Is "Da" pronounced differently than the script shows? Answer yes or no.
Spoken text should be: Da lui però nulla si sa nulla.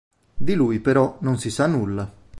yes